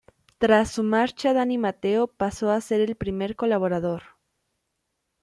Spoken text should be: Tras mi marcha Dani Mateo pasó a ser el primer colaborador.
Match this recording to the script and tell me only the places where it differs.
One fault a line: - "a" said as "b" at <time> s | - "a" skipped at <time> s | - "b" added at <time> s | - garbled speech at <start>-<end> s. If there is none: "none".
- "mi" said as "su" at 0.7 s